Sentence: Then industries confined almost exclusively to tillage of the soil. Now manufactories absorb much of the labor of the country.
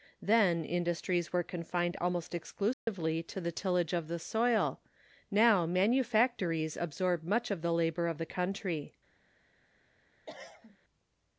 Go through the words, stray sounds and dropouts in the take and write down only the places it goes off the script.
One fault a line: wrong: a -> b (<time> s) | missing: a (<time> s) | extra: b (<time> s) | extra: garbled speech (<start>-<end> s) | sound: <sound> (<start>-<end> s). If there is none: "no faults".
extra: were (1.3 s)
sound: dropout (2.7-2.9 s)
extra: the (3.4 s)
sound: cough (10.3-10.8 s)